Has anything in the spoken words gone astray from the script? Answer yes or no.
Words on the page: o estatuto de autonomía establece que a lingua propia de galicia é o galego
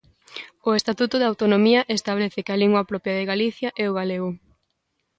no